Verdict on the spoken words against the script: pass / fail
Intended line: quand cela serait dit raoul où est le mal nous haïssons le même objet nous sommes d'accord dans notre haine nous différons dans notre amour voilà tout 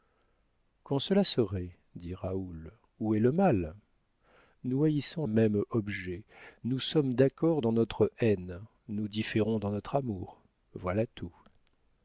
fail